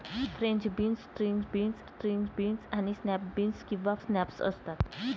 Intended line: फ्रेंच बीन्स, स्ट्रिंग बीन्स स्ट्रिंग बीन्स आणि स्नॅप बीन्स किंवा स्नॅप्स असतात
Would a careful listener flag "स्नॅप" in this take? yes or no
no